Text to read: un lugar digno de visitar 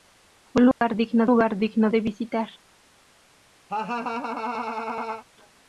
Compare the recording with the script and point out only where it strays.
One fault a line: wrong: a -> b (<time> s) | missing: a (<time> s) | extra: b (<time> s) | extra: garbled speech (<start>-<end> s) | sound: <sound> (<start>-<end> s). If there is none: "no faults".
sound: dropout (0.7-0.8 s)
extra: lugar digno (1.2 s)
sound: laugh (3.7-5.2 s)